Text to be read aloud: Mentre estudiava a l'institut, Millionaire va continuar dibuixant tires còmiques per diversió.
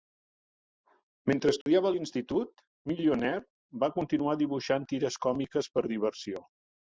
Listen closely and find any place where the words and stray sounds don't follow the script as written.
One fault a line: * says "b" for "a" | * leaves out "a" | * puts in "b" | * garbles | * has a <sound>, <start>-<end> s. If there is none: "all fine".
* has a dropout, 1.6-1.7 s